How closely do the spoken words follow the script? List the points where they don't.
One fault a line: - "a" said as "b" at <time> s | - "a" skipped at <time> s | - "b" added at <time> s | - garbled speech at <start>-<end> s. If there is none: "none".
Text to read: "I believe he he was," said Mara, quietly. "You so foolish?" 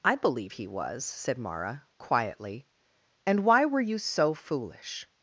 - "he" skipped at 0.7 s
- "And why were" added at 3.2 s